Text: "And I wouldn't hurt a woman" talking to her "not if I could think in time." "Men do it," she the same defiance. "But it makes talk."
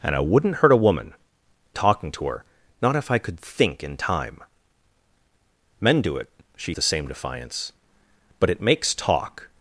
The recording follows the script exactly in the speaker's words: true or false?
true